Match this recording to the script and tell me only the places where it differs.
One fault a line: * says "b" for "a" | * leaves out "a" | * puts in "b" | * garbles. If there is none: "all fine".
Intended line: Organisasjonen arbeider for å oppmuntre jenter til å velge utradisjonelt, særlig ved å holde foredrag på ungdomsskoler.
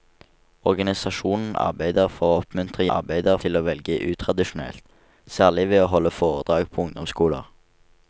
* says "arbeider" for "jenter"